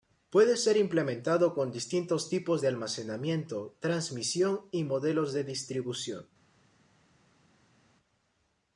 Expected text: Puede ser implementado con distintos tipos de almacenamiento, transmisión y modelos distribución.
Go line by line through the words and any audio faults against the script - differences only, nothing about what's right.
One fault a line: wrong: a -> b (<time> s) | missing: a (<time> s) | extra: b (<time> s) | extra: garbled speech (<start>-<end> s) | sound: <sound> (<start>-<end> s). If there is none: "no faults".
extra: de (5.3 s)